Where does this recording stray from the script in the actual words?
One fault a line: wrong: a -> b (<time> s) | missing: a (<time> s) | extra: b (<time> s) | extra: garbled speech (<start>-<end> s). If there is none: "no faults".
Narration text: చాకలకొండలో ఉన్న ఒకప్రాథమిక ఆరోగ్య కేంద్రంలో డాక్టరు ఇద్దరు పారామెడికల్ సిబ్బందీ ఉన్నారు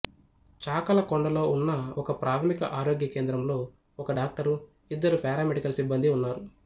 extra: ఒక (4.0 s)